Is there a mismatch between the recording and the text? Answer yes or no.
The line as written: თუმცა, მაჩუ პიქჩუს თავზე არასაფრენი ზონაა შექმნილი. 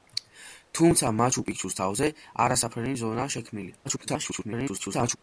yes